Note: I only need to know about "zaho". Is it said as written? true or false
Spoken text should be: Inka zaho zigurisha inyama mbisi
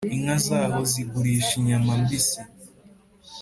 true